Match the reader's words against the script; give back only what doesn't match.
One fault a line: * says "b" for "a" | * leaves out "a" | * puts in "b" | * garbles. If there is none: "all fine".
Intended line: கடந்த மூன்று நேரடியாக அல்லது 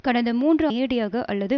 all fine